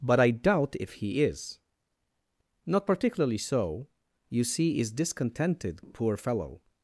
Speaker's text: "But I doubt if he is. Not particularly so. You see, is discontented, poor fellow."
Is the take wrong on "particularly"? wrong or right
right